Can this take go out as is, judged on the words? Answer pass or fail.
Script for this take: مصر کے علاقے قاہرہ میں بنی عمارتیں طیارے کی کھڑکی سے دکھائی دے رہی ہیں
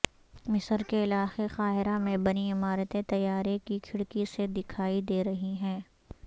pass